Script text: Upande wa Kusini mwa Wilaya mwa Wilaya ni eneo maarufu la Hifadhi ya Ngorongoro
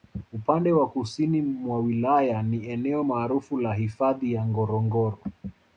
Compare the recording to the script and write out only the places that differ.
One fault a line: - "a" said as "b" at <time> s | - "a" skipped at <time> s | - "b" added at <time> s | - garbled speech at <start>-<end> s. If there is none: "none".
- "mwa Wilaya" skipped at 2.4 s